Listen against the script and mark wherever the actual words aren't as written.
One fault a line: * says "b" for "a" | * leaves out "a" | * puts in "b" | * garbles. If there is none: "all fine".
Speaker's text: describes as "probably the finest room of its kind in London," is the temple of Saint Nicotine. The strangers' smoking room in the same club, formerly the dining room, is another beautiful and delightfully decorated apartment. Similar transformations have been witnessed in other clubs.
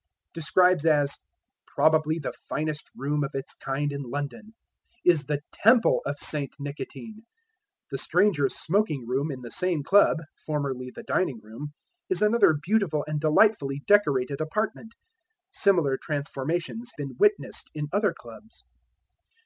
* leaves out "have"